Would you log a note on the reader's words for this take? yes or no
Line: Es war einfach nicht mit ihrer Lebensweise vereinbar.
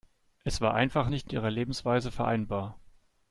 yes